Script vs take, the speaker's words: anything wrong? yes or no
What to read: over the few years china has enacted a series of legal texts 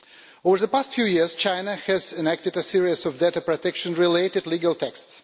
yes